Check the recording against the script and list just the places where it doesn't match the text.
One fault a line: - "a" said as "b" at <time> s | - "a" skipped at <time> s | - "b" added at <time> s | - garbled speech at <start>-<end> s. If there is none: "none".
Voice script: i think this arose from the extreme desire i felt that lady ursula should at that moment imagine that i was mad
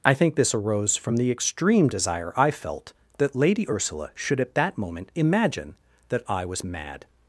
none